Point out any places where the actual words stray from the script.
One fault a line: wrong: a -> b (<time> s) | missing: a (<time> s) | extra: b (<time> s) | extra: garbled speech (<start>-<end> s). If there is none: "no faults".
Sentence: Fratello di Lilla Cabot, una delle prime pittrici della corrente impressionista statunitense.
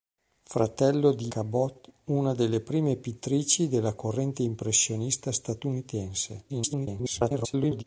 missing: Lilla (1.3 s)
extra: garbled speech (6.5-7.8 s)